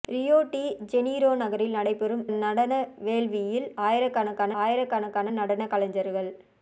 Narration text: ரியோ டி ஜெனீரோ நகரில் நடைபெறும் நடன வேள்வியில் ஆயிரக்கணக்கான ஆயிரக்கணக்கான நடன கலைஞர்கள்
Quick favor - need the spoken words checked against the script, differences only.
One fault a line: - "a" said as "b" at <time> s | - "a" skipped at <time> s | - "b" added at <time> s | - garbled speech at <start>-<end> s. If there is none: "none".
none